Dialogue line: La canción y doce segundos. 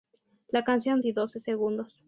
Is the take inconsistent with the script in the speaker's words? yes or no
no